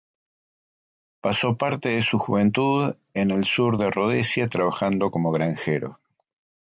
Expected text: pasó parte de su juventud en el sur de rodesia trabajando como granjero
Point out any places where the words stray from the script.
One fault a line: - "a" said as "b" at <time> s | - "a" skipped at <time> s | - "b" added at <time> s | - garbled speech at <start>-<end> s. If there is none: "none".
none